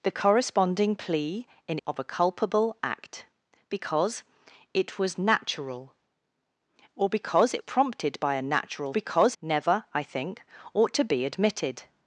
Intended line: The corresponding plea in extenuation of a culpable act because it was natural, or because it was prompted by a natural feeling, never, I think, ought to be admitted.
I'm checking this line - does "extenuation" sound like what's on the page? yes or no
no